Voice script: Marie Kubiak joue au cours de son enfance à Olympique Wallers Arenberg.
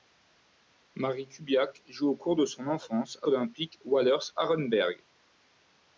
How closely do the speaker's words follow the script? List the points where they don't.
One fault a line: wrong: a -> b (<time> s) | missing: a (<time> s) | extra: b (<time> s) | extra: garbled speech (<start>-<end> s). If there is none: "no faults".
no faults